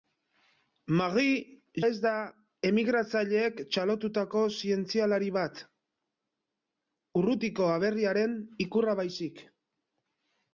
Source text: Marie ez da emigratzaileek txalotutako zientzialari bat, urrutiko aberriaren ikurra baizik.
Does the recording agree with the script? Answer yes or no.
yes